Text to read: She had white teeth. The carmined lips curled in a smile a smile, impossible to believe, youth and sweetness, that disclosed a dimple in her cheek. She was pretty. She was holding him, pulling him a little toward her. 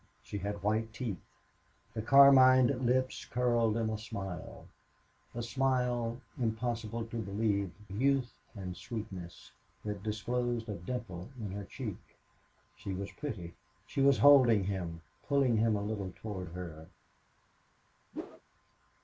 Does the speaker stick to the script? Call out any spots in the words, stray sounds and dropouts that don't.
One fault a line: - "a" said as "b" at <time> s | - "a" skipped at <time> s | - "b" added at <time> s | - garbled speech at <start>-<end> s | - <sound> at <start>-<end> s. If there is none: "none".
- whoosh at 18.1-18.4 s